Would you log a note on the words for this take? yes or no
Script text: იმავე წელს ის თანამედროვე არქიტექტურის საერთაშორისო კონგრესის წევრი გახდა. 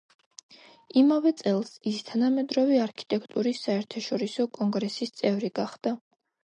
no